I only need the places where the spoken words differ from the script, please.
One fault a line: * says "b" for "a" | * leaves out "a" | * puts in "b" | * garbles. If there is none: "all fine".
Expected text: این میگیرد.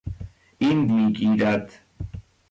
all fine